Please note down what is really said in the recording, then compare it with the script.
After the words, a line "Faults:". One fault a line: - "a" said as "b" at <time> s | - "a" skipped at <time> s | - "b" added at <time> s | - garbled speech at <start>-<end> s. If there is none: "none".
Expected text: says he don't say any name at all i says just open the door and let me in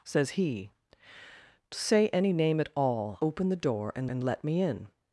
says he say any name at all open the door and and let me in
Faults:
- "don't" skipped at 0.7 s
- "i says just" skipped at 3.2 s
- "and" added at 4.1 s